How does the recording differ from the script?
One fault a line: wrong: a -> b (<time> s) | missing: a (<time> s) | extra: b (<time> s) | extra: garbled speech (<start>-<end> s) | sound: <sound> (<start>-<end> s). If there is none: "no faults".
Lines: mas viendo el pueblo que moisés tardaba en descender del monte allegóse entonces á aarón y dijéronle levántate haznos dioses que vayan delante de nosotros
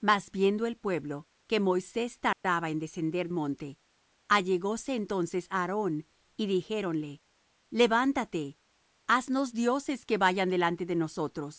sound: dropout (2.3-2.4 s)
missing: del (3.3 s)